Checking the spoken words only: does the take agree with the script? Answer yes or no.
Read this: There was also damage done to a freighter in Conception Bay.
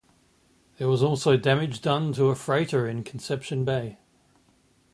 yes